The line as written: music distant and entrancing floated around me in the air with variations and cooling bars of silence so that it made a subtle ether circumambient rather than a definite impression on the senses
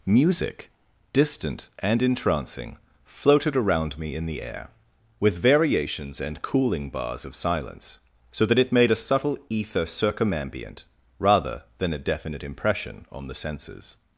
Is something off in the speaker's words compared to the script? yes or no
no